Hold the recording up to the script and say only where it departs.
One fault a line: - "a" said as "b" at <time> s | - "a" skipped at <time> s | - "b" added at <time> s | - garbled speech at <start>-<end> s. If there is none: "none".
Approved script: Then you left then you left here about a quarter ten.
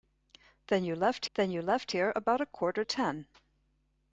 none